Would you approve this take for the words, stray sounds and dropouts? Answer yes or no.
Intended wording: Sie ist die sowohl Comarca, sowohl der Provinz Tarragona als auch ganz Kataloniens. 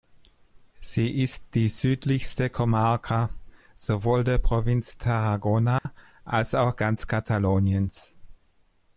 no